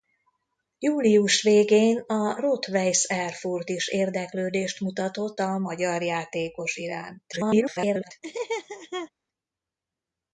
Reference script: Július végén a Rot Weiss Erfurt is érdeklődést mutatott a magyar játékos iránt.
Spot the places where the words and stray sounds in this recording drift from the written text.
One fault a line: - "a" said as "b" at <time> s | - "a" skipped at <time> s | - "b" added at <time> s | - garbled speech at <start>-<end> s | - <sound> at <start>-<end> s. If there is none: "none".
- garbled speech at 7.3-8.1 s
- laugh at 8.2-9.1 s